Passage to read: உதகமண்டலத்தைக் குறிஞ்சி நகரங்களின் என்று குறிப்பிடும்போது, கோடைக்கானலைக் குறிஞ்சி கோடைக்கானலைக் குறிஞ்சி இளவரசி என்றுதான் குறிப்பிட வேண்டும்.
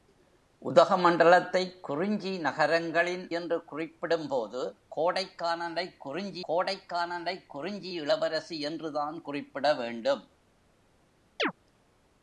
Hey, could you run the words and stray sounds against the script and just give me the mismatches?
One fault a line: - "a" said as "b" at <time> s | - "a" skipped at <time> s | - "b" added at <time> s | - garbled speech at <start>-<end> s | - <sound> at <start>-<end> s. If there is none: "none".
- chirp at 11.4-11.5 s